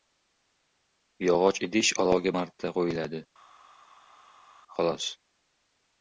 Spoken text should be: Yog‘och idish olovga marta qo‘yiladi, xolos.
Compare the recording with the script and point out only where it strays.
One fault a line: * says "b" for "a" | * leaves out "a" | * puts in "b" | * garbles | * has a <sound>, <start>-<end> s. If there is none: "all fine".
all fine